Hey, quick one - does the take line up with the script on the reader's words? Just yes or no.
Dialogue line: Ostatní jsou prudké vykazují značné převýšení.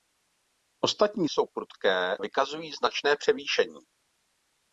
yes